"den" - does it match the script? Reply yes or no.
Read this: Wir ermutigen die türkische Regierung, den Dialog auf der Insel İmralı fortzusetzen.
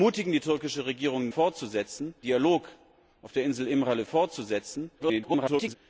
no